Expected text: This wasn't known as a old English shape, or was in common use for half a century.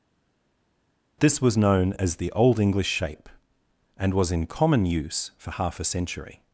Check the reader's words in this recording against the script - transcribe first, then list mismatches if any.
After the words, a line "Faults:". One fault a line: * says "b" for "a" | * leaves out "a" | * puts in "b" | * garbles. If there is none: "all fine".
This was known as the old English shape, and was in common use for half a century.
Faults:
* says "was" for "wasn't"
* says "the" for "a"
* says "and" for "or"